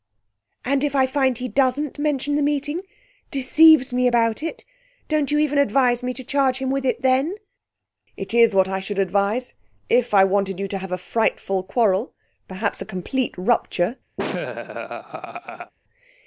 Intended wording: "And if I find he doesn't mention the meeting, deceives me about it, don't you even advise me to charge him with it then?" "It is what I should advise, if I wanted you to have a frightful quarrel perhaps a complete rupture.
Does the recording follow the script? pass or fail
pass